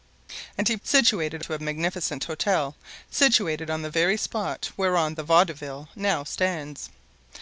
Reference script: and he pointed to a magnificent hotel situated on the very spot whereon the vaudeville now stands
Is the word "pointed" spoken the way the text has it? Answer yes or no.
no